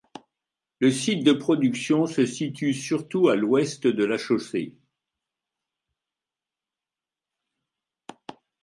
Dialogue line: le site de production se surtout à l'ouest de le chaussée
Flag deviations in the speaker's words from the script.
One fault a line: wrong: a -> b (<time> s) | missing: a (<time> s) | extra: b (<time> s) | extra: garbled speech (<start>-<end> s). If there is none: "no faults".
extra: situe (2.2 s)
wrong: le -> la (4.0 s)